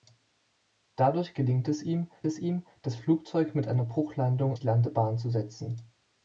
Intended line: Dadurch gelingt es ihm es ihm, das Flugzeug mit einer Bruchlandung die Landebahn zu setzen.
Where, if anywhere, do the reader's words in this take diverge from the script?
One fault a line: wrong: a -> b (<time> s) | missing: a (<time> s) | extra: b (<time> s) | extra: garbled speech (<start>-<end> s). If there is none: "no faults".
no faults